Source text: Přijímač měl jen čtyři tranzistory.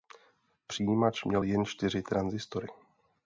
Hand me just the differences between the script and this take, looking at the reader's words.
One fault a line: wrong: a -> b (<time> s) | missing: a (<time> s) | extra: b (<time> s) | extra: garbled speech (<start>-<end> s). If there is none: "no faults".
no faults